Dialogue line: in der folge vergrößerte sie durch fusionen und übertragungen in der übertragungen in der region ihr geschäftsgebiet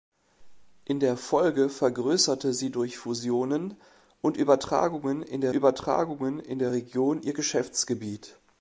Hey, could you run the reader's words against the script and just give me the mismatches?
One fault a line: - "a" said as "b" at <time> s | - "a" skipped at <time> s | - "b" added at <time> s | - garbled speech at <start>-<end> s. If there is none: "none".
none